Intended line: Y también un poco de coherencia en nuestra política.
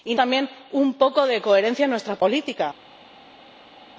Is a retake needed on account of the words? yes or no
no